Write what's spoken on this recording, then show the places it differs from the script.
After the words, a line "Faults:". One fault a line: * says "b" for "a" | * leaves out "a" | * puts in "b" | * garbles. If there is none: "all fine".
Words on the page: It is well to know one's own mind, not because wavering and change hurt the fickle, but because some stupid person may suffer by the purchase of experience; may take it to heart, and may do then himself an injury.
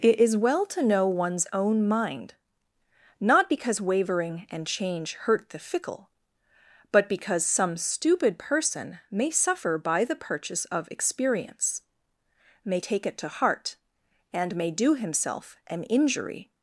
It is well to know one's own mind, not because wavering and change hurt the fickle, but because some stupid person may suffer by the purchase of experience; may take it to heart, and may do himself an injury.
Faults:
* leaves out "then"